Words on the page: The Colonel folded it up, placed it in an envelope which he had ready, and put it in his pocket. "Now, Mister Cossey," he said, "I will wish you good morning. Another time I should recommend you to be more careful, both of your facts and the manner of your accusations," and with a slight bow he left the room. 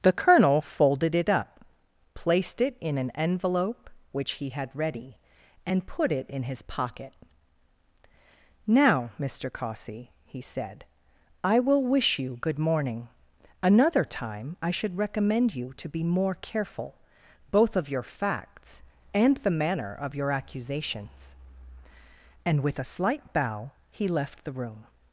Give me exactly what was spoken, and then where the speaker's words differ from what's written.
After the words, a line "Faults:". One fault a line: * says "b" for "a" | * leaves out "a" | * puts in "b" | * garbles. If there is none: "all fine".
The Colonel folded it up, placed it in an envelope which he had ready, and put it in his pocket. "Now, Mister Cossey," he said, "I will wish you good morning. Another time I should recommend you to be more careful, both of your facts and the manner of your accusations," and with a slight bow he left the room.
Faults:
all fine